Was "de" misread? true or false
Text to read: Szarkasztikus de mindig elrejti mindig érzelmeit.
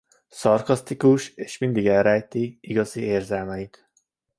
true